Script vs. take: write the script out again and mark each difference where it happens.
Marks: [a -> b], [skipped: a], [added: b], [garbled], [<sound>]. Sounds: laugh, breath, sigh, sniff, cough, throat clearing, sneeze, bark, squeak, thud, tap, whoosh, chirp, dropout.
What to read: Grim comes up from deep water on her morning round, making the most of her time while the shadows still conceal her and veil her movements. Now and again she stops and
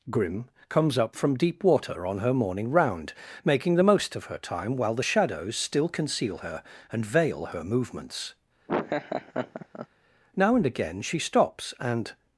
Grim comes up from deep water on her morning round, making the most of her time while the shadows still conceal her and veil her movements. [laugh] Now and again she stops and